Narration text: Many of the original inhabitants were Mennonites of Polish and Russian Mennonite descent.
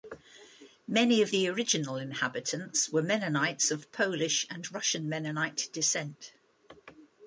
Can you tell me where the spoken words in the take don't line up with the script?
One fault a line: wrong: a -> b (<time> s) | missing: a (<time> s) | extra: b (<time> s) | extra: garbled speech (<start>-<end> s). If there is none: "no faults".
no faults